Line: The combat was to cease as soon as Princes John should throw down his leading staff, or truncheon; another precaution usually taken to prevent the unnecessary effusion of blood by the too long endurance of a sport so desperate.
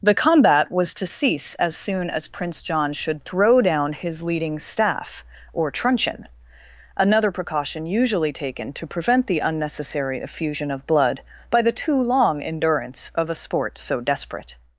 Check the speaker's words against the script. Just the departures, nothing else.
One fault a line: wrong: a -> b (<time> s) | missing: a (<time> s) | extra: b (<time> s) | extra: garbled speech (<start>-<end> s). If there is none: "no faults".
wrong: Princes -> Prince (2.3 s)